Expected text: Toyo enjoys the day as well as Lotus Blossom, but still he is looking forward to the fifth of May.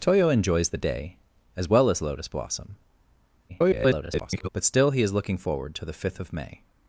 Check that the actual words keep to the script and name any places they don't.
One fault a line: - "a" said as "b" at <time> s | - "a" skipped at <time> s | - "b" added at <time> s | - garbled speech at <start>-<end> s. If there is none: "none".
- garbled speech at 3.5-4.5 s